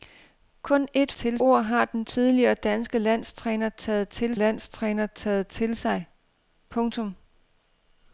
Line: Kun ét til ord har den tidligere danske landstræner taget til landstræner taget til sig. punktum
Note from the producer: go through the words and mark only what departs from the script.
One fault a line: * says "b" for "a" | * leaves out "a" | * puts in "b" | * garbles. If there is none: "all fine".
all fine